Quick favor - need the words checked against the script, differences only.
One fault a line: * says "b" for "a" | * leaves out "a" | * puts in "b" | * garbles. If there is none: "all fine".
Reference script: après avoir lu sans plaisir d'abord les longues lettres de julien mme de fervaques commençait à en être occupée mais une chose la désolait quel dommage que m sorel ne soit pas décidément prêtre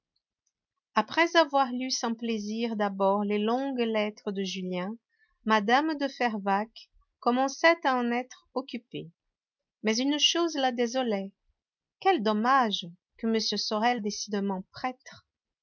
* leaves out "ne soit pas"